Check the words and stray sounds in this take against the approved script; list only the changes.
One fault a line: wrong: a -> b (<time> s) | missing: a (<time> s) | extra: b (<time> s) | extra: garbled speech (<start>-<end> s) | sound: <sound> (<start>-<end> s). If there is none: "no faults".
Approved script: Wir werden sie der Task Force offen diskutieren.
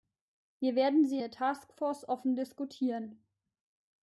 no faults